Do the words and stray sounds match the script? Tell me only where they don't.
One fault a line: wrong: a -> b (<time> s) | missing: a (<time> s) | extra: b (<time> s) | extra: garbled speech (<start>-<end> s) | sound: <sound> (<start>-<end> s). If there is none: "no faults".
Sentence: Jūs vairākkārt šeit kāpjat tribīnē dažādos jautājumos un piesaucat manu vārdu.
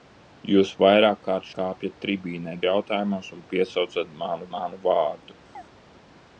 missing: šeit (1.5 s)
missing: dažādos (2.6 s)
extra: manu (4.6 s)
sound: chirp (5.5-5.6 s)